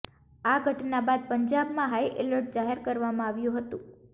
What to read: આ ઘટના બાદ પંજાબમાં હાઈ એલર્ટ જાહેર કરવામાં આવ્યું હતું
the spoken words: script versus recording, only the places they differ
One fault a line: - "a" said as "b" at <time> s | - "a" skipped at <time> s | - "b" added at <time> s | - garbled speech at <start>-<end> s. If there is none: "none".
none